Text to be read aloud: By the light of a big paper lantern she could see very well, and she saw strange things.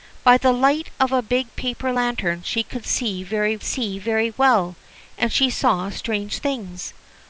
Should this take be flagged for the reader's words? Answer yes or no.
yes